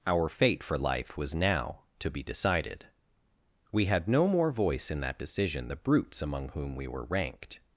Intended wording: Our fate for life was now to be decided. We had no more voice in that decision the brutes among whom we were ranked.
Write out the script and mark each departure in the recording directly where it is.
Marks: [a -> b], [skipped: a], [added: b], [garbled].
Our fate for life was now to be decided. We had no more voice in that decision the brutes among whom we were ranked.